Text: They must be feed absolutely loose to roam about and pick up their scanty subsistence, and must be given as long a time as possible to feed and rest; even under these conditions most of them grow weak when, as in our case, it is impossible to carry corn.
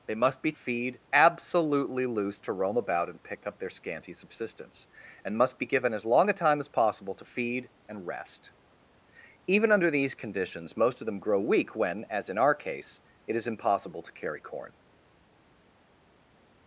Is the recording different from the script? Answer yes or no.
no